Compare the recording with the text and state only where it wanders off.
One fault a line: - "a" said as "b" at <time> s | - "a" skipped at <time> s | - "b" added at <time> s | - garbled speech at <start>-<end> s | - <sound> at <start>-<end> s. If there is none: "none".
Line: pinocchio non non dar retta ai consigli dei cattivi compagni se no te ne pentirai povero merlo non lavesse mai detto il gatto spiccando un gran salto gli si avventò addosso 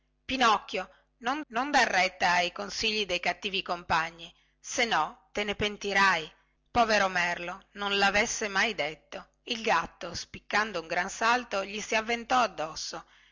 none